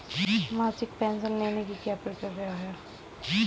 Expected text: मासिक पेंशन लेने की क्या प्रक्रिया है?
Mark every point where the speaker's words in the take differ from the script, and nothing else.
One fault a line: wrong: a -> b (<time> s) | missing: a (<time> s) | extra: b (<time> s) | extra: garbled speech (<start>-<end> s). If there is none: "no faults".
no faults